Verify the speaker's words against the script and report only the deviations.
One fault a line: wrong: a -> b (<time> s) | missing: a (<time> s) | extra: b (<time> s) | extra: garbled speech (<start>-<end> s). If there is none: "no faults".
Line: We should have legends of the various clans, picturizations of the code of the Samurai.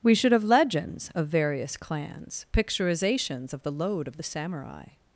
missing: the (1.3 s)
wrong: code -> load (3.7 s)